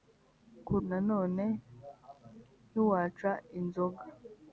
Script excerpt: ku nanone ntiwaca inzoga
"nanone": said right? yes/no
yes